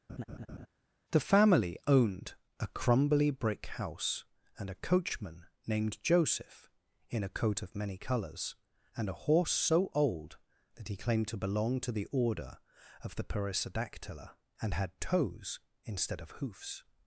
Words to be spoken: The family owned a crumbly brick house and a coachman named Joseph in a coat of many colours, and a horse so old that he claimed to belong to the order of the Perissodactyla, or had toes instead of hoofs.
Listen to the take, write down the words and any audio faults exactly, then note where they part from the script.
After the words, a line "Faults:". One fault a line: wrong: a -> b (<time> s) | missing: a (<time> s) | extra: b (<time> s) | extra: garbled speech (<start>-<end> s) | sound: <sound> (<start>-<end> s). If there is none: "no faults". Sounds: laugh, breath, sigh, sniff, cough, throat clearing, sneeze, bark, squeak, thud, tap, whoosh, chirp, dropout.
The family owned a crumbly brick house and a coachman named Joseph in a coat of many colours, and a horse so old that he claimed to belong to the order of the Perissodactyla, and had toes instead of hoofs.
Faults:
sound: laugh (0.1-0.7 s)
wrong: or -> and (14.6 s)